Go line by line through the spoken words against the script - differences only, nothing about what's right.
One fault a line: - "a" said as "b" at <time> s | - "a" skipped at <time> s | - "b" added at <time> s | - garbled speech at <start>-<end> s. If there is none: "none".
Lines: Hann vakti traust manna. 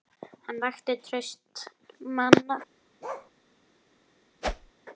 none